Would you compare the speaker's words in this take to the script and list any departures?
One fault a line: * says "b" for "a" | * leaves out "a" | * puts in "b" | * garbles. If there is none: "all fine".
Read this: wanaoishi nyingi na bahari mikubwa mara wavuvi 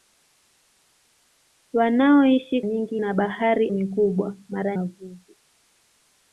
all fine